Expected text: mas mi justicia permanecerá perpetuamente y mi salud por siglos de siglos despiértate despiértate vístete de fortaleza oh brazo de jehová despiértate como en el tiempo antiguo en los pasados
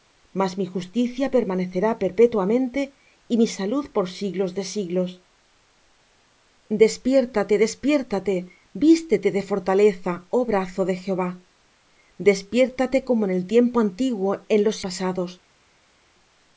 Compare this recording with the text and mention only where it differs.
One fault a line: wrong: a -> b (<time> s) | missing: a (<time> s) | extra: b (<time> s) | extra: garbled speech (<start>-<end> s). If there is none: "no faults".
no faults